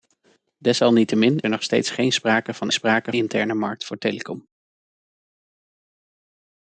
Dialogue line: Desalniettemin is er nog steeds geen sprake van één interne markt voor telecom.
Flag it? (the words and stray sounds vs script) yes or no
yes